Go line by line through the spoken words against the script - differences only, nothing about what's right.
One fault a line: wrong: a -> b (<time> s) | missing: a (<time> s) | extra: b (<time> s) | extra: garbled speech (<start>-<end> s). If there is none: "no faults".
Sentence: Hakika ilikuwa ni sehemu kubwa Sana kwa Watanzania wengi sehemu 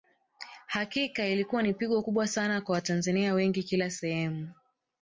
wrong: sehemu -> pigo (1.7 s)
extra: kila (3.6 s)